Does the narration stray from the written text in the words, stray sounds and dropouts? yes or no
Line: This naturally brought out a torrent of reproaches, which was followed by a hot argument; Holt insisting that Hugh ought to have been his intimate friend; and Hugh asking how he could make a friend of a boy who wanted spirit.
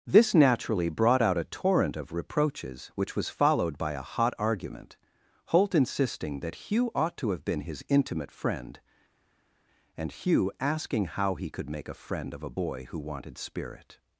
no